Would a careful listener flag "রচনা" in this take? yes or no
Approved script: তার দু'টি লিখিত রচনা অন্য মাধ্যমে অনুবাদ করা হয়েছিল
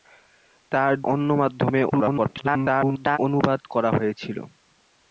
yes